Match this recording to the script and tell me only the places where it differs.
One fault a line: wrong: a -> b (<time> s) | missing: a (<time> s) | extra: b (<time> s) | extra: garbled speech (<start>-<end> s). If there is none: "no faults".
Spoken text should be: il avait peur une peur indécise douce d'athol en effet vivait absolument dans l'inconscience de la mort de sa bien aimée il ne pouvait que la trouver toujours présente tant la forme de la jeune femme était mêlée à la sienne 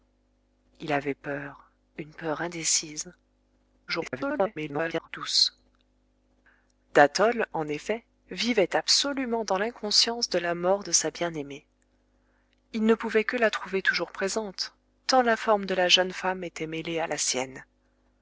extra: garbled speech (3.9-5.1 s)